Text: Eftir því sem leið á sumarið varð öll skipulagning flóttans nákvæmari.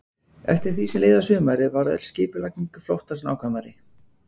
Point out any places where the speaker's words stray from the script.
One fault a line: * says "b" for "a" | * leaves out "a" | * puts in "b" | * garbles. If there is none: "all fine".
all fine